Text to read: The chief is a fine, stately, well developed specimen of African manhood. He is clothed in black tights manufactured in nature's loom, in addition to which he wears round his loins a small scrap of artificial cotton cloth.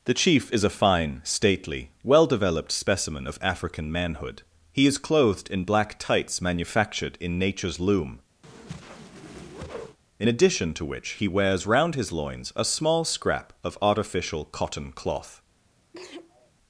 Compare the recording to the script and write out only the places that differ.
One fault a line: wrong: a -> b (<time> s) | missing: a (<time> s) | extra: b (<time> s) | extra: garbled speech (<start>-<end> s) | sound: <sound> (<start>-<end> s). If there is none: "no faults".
sound: whoosh (8.4-10.0 s)
sound: sneeze (15.9-16.5 s)